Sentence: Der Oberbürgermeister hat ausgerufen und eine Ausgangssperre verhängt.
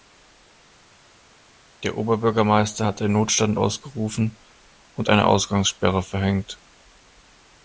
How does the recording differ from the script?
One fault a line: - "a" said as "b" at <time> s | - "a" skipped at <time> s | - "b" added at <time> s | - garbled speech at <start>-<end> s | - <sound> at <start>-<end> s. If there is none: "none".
- "den Notstand" added at 3.0 s